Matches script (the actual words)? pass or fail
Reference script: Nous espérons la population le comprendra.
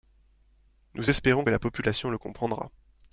pass